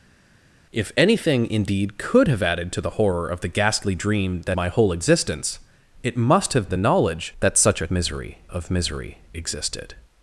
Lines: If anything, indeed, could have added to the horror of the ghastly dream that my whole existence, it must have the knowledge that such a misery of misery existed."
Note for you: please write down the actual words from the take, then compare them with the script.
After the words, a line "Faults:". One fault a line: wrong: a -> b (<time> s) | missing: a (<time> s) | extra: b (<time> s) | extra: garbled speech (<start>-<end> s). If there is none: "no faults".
If anything, indeed, could have added to the horror of the ghastly dream that my whole existence, it must have the knowledge that such a misery of misery existed."
Faults:
no faults